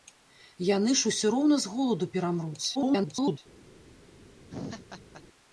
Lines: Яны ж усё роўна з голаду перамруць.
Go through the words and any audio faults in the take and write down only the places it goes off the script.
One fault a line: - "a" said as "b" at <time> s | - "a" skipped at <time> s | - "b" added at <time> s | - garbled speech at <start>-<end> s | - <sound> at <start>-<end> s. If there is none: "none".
- garbled speech at 2.7-3.4 s
- laugh at 4.5-5.2 s